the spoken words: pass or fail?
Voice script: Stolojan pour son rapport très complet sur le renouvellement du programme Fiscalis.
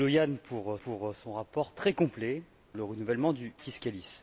fail